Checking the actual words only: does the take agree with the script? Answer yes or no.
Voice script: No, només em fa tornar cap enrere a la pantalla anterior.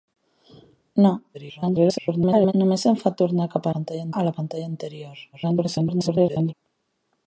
no